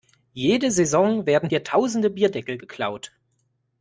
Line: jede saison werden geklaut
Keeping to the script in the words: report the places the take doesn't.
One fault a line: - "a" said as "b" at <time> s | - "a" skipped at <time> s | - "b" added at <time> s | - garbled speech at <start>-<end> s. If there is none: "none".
- "hier tausende bierdeckel" added at 1.5 s